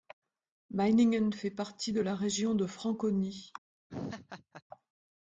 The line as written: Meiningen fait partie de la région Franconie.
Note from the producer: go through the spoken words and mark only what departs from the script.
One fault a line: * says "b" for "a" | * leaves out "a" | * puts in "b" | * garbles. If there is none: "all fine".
* puts in "de"